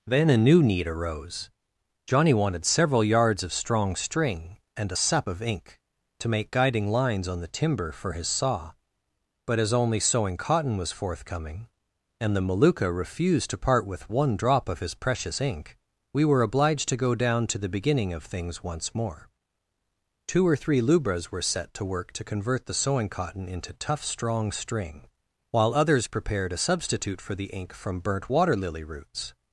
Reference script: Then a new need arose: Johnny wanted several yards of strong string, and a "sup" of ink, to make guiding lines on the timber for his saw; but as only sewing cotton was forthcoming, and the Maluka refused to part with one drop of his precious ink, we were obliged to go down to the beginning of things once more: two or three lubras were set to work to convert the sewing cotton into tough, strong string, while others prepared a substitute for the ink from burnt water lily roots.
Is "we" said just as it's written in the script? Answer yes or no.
yes